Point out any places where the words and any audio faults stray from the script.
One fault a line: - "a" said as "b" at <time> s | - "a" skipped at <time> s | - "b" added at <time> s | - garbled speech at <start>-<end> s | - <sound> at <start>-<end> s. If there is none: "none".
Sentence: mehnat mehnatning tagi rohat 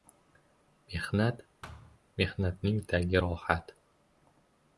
- thud at 1.6-2.0 s